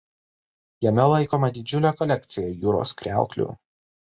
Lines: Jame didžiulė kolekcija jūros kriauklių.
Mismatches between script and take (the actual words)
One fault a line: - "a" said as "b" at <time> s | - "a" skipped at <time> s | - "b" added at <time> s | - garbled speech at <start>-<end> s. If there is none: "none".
- "laikoma" added at 1.1 s